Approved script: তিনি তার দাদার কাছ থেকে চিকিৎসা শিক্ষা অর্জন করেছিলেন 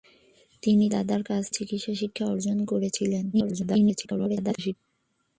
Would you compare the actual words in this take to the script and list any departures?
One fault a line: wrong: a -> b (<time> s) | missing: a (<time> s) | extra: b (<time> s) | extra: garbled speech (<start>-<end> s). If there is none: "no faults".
missing: তার (0.8 s)
missing: থেকে (1.4 s)
extra: garbled speech (3.3-4.8 s)